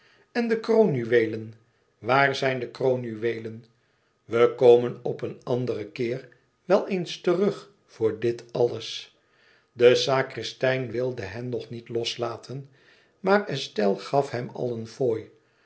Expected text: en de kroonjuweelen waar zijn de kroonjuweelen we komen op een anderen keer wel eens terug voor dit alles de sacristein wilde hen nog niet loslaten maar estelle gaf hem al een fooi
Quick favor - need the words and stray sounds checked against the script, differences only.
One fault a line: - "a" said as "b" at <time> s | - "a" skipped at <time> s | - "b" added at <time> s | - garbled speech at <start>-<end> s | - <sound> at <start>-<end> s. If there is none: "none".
none